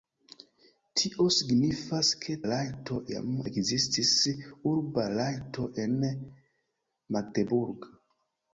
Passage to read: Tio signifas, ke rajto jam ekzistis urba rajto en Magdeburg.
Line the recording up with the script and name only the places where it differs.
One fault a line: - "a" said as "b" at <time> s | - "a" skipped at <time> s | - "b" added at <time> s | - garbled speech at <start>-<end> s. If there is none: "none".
none